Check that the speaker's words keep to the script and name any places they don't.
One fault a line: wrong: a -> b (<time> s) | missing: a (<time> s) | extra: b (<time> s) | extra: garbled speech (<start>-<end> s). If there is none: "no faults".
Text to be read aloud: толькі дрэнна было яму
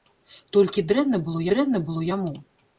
extra: дрэнна было (1.5 s)